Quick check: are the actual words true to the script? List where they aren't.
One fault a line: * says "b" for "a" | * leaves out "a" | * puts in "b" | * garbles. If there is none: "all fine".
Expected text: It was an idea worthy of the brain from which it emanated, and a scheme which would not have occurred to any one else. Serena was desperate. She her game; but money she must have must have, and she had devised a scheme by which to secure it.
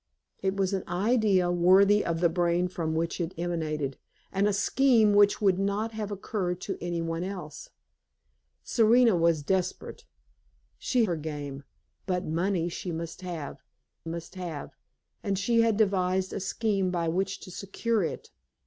all fine